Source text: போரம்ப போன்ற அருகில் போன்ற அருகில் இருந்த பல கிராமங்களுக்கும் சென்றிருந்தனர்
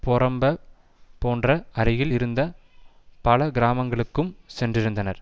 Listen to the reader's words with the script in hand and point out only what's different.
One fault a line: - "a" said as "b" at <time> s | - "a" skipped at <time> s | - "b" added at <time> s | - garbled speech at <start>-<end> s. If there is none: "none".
- "போன்ற அருகில்" skipped at 2.1 s